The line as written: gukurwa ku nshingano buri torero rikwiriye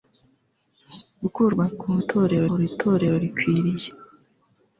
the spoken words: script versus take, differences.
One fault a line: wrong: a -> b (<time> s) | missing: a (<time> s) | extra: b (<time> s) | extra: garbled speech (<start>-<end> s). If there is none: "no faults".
wrong: nshingano -> torero (2.1 s)